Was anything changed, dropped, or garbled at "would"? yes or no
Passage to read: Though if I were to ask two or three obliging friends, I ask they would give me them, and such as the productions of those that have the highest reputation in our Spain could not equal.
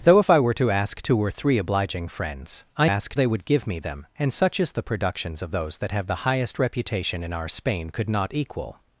no